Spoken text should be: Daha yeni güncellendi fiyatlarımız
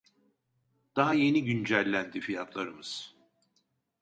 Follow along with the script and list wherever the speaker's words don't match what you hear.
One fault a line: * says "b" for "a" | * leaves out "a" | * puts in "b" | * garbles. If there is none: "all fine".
all fine